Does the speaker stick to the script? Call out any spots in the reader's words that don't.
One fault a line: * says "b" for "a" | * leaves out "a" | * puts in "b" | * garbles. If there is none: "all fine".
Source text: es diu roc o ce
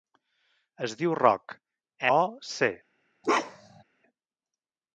all fine